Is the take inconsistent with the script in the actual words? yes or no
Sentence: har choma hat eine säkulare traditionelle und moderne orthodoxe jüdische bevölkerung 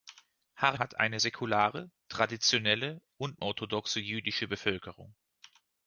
yes